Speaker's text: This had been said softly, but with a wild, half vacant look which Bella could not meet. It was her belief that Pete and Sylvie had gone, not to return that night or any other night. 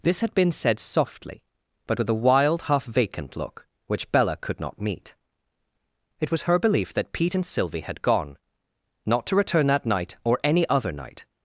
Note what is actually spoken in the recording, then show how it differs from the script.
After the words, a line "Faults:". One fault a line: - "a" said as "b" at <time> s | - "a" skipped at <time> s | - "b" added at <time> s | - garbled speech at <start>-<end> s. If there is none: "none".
This had been said softly, but with a wild, half vacant look which Bella could not meet. It was her belief that Pete and Sylvie had gone, not to return that night or any other night.
Faults:
none